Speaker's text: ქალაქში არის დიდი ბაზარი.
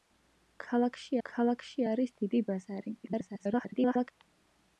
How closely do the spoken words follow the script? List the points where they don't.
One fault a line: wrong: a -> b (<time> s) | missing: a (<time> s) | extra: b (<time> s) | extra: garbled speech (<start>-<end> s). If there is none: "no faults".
extra: ქალაქში (1.3 s)
extra: garbled speech (3.0-4.1 s)